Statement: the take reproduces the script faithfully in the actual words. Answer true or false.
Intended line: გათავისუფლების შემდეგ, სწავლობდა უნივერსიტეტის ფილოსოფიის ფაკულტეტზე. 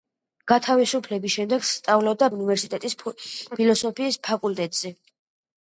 true